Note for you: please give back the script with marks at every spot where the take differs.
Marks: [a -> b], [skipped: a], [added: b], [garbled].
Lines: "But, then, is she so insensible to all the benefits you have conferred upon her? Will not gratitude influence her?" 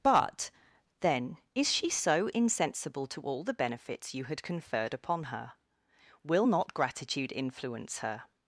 "But, then, is she so insensible to all the benefits you [have -> had] conferred upon her? Will not gratitude influence her?"